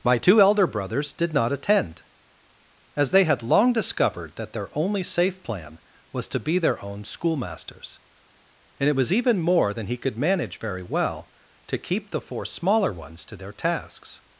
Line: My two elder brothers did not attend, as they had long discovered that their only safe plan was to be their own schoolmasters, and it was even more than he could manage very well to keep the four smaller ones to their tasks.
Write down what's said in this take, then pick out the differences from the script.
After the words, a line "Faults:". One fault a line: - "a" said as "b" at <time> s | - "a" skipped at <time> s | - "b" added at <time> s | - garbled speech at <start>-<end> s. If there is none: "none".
My two elder brothers did not attend, as they had long discovered that their only safe plan was to be their own schoolmasters, and it was even more than he could manage very well to keep the four smaller ones to their tasks.
Faults:
none